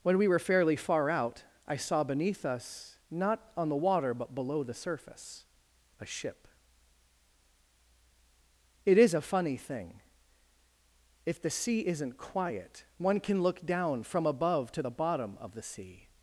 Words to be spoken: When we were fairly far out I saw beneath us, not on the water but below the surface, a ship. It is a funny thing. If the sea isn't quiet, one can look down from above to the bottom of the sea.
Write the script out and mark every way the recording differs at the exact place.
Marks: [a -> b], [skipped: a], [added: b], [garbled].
When we were fairly far out I saw beneath us, not on the water but below the surface, a ship. It is a funny thing. If the sea isn't quiet, one can look down from above to the bottom of the sea.